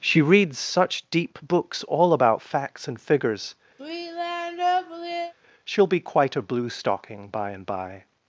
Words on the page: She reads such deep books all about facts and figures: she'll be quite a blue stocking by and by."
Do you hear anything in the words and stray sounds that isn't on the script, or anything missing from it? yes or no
yes